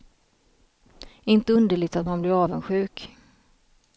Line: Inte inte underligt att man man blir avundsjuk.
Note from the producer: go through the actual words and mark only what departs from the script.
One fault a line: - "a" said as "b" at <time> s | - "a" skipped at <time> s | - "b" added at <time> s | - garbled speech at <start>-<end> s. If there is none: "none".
- "inte" skipped at 1.5 s
- "man" skipped at 2.2 s